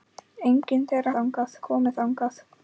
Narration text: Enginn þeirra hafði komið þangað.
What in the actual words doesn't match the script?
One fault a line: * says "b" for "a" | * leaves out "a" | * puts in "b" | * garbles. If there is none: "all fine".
* says "þangað" for "hafði"